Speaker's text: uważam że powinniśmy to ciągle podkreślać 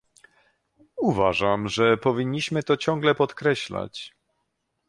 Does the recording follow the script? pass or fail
pass